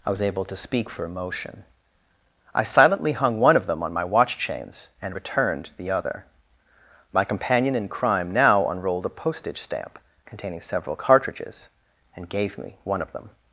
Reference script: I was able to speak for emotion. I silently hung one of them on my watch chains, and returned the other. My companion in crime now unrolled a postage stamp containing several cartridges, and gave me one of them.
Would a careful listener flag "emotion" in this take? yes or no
no